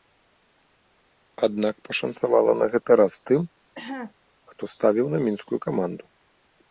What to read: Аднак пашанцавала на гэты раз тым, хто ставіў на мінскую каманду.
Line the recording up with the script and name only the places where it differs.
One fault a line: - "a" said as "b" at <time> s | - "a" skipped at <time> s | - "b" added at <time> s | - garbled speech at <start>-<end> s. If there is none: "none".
none